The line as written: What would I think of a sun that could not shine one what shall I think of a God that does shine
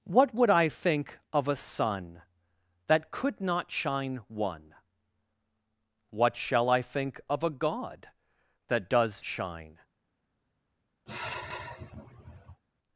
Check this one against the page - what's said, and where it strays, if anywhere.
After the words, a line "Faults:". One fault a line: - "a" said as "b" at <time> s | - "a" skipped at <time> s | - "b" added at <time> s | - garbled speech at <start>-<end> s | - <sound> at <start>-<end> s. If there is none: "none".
What would I think of a sun that could not shine one what shall I think of a God that does shine
Faults:
- sigh at 11.1-12.6 s